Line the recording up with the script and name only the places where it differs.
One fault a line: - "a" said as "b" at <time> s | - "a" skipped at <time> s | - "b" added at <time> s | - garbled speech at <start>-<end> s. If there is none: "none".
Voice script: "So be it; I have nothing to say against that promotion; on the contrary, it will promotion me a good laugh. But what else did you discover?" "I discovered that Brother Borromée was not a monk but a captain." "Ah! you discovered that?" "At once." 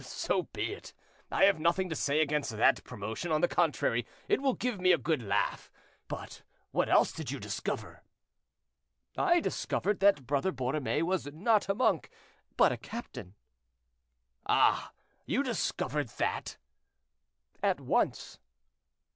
- "promotion" said as "give" at 4.5 s